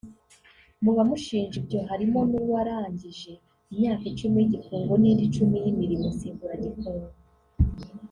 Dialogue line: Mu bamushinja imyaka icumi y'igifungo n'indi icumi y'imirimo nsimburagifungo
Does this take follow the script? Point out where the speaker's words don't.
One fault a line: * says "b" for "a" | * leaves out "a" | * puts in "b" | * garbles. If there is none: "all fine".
* puts in "ibyo harimo n'uwarangije"